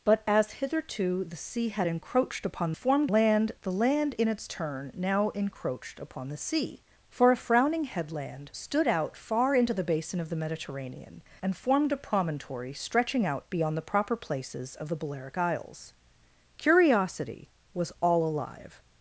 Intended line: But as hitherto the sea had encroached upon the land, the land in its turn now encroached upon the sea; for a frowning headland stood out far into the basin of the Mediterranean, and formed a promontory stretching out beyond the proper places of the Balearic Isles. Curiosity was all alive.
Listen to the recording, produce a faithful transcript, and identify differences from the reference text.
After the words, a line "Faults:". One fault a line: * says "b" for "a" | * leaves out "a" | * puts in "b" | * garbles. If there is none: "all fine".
But as hitherto the sea had encroached upon formed land, the land in its turn now encroached upon the sea; for a frowning headland stood out far into the basin of the Mediterranean, and formed a promontory stretching out beyond the proper places of the Balearic Isles. Curiosity was all alive.
Faults:
* says "formed" for "the"